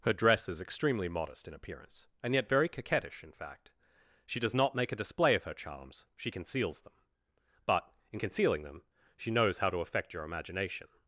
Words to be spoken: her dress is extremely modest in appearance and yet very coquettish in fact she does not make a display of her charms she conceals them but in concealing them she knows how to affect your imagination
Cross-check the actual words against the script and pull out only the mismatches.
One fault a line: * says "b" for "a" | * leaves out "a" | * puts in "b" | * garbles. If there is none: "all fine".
all fine